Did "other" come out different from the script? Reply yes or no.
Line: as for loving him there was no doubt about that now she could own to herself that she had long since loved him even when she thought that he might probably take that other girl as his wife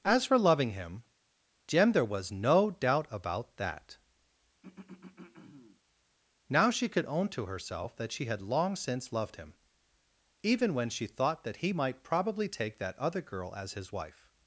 no